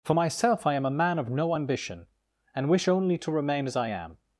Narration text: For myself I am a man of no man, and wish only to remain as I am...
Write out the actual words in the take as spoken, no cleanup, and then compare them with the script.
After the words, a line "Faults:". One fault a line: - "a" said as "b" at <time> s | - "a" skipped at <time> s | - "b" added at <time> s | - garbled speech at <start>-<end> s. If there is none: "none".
For myself I am a man of no ambition, and wish only to remain as I am...
Faults:
- "man" said as "ambition" at 1.5 s